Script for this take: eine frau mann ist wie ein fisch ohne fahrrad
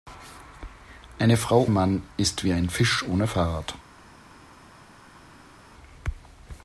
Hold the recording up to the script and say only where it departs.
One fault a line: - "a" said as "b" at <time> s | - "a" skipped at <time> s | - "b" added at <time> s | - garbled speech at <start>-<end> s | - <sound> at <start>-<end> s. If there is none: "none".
none